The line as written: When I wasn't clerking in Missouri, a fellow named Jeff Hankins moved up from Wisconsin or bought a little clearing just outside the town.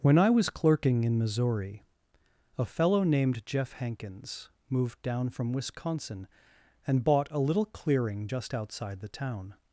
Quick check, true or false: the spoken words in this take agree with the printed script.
false